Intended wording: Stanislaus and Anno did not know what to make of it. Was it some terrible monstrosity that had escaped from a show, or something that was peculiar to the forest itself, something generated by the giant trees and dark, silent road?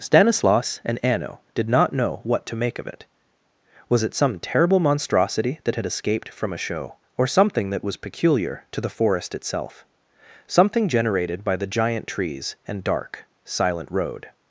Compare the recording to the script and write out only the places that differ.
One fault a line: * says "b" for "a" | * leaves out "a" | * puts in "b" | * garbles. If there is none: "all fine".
all fine